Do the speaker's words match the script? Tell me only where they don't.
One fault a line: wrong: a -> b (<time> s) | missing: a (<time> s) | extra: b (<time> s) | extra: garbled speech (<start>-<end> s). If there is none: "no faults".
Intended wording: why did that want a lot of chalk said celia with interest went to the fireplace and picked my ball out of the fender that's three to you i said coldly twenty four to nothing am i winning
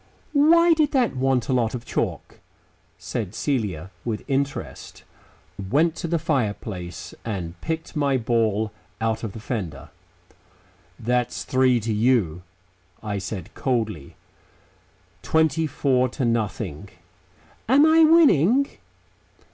no faults